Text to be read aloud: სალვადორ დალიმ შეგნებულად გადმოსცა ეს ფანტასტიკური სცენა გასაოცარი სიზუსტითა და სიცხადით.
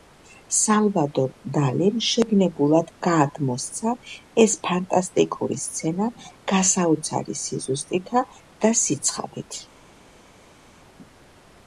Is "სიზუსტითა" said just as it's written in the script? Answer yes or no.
yes